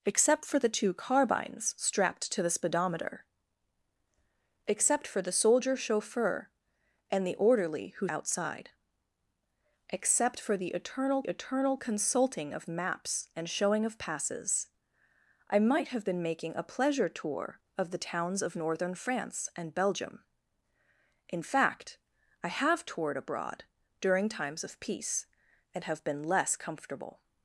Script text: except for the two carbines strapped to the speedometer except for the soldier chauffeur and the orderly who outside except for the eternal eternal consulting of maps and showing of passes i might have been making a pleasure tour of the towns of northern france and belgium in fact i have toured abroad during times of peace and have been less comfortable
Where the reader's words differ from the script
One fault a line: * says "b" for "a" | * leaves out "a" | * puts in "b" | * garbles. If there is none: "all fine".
all fine